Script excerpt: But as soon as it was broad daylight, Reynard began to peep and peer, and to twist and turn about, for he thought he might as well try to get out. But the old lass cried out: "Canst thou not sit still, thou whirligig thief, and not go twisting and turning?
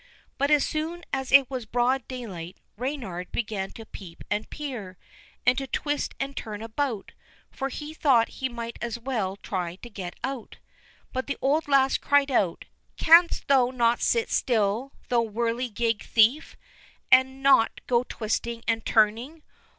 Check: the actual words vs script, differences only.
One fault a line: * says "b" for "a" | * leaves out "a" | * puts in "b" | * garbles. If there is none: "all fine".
all fine